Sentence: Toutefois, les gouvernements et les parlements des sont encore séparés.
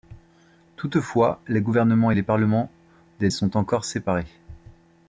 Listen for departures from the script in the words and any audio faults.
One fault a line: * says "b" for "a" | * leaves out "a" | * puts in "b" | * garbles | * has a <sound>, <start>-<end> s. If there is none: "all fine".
all fine